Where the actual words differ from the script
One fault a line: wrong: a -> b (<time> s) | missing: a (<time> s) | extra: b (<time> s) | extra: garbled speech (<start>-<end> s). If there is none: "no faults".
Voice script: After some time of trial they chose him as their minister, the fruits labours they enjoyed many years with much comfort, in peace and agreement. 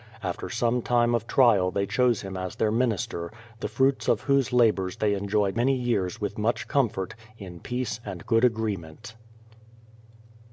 extra: of whose (4.1 s)
extra: good (8.2 s)